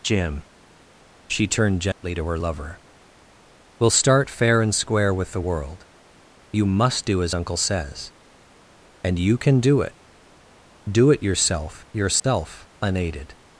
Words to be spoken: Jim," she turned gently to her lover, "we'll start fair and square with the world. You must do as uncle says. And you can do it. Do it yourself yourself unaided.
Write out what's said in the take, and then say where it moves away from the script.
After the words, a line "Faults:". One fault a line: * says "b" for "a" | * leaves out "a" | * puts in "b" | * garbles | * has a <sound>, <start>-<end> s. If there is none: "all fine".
Jim," she turned gently to her lover, "we'll start fair and square with the world. You must do as uncle says. And you can do it. Do it yourself yourself unaided.
Faults:
* has a dropout, 1.9-2.0 s
* has a dropout, 12.2-12.2 s